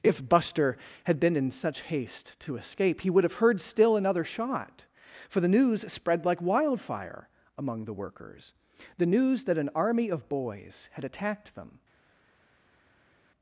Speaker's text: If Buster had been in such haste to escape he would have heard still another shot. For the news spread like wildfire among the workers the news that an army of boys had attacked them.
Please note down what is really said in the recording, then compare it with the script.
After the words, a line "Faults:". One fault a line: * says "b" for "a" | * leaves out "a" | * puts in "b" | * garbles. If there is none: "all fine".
If Buster had been in such haste to escape he would have heard still another shot. For the news spread like wildfire among the workers the news that an army of boys had attacked them.
Faults:
all fine